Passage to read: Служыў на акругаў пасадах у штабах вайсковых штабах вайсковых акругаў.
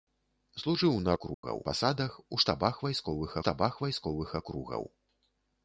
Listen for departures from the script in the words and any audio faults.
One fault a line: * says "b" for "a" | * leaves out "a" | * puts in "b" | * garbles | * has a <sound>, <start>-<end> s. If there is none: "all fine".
* has a dropout, 1.3-1.4 s